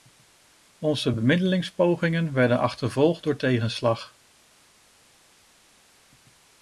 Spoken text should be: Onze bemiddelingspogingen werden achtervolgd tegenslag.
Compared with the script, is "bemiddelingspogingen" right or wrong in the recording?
right